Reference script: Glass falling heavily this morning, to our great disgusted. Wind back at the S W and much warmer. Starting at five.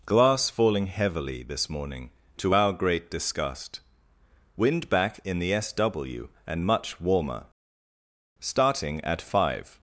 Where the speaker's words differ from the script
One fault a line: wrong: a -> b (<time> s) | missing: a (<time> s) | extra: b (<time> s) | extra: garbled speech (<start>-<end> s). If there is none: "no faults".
wrong: disgusted -> disgust (3.1 s)
wrong: at -> in (5.2 s)